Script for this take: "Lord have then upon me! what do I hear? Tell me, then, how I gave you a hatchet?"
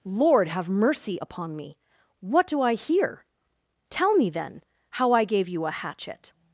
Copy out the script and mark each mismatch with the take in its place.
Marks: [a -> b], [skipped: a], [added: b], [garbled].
"Lord have [then -> mercy] upon me! what do I hear? Tell me, then, how I gave you a hatchet?"